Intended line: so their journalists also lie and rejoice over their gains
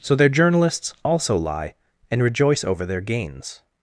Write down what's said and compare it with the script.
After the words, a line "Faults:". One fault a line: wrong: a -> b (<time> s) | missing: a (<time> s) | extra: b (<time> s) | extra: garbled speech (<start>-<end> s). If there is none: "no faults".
so their journalists also lie and rejoice over their gains
Faults:
no faults